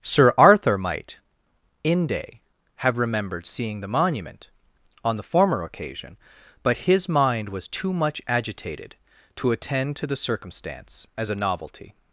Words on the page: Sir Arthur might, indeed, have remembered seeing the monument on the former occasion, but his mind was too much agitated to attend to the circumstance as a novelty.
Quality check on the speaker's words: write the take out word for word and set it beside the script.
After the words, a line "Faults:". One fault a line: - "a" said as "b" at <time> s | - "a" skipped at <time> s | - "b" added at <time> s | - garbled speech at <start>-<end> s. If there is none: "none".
Sir Arthur might, inde, have remembered seeing the monument on the former occasion, but his mind was too much agitated to attend to the circumstance as a novelty.
Faults:
- "indeed" said as "inde" at 1.8 s